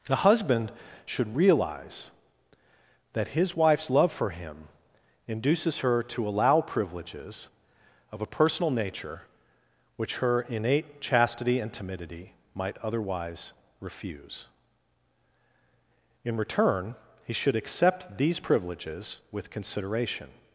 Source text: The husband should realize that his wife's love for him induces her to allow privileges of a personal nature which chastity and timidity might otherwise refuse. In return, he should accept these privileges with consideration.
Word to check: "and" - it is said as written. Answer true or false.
true